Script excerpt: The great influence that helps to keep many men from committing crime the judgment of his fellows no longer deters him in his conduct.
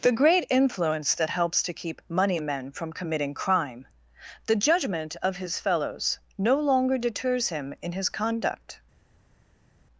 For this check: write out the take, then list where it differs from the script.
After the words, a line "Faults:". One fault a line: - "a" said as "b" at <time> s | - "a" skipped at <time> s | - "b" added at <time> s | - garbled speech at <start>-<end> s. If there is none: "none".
The great influence that helps to keep money men from committing crime the judgment of his fellows no longer deters him in his conduct.
Faults:
- "many" said as "money" at 2.1 s